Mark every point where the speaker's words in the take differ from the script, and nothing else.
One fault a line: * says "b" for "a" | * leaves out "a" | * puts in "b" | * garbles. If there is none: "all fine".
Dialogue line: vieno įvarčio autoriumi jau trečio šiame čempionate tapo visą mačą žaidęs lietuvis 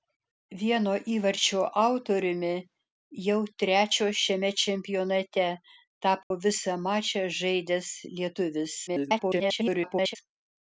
* garbles